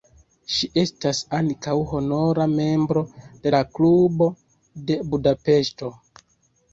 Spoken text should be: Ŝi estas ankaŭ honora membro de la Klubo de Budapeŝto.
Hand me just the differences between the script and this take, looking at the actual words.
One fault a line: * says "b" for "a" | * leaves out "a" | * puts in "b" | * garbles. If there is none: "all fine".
all fine